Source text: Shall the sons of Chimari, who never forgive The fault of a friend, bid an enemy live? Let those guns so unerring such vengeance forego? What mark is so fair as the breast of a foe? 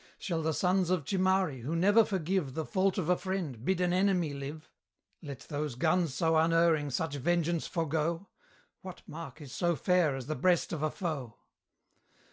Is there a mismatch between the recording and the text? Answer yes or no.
no